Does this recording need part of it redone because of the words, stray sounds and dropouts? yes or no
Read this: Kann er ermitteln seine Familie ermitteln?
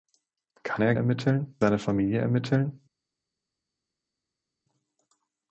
no